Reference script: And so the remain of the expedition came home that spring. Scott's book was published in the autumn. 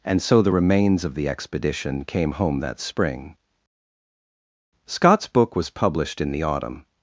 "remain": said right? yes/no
no